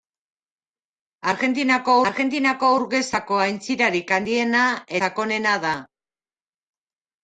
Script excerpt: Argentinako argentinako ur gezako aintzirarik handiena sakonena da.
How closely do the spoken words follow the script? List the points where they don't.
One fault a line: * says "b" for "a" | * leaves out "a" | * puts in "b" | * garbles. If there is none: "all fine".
all fine